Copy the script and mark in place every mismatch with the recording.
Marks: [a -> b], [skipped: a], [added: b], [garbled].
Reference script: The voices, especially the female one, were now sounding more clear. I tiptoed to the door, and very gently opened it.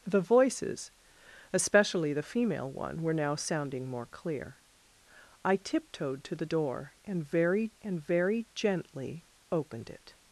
The voices, especially the female one, were now sounding more clear. I tiptoed to the door, and very [added: and very] gently opened it.